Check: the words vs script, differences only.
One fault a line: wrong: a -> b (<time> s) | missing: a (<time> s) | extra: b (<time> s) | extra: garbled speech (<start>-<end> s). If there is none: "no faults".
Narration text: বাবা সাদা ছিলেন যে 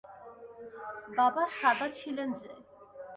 no faults